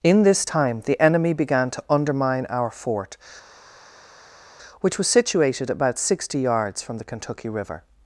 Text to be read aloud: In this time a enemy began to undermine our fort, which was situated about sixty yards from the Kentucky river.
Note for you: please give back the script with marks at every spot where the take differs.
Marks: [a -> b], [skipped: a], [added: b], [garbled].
In this time [a -> the] enemy began to undermine our fort, which was situated about sixty yards from the Kentucky river.